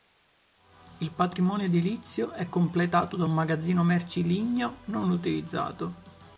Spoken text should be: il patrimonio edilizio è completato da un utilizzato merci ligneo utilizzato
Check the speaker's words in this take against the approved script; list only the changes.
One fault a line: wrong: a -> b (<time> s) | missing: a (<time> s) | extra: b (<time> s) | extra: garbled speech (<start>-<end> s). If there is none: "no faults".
wrong: utilizzato -> magazzino (3.3 s)
extra: non (4.9 s)